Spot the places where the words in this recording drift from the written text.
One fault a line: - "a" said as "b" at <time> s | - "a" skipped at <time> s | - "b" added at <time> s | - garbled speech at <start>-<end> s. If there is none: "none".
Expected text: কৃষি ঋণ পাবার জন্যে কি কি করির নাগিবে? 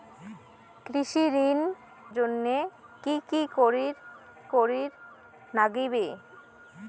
- "পাবার" skipped at 1.6 s
- "করির" added at 4.5 s